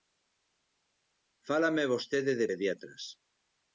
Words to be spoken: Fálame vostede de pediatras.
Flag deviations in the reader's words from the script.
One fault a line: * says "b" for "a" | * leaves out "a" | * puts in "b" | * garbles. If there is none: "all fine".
all fine